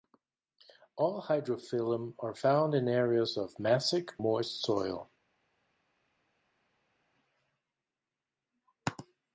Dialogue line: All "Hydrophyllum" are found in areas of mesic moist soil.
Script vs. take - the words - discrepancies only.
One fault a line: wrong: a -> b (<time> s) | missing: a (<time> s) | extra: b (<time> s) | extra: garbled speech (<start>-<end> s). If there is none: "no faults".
no faults